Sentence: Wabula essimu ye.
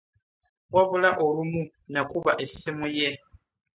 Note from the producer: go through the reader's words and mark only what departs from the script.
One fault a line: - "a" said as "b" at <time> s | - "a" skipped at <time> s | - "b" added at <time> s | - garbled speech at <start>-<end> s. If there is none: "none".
- "olumu nakuba" added at 1.2 s